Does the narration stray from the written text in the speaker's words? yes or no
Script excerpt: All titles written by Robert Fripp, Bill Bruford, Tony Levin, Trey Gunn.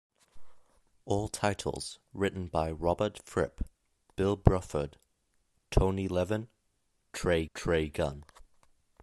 yes